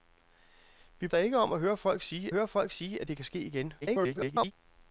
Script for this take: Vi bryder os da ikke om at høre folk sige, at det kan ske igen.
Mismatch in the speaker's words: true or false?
true